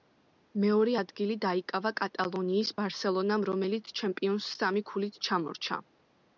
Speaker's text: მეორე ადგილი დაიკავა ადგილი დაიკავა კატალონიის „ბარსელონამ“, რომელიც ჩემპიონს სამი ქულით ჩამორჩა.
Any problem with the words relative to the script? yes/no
yes